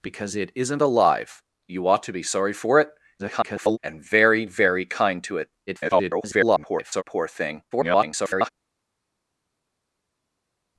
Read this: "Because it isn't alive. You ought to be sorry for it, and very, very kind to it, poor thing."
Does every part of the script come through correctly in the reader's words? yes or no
no